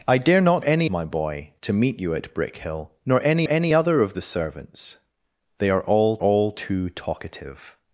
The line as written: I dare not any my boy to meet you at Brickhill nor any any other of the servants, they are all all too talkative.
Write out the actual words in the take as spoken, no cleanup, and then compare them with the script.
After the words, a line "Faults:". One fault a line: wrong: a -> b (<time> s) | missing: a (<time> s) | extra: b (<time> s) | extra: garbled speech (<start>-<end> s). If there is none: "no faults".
I dare not any my boy to meet you at Brickhill nor any any other of the servants, they are all all too talkative.
Faults:
no faults